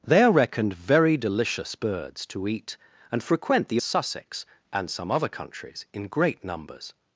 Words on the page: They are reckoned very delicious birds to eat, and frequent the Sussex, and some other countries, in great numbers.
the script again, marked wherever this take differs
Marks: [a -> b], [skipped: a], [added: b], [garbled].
They are reckoned very delicious birds to eat, and frequent the Sussex, and some other countries, in great numbers.